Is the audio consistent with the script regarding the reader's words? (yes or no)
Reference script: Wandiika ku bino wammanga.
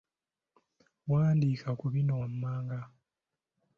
yes